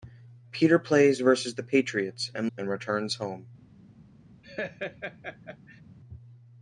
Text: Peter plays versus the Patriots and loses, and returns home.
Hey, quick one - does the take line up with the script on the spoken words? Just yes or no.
no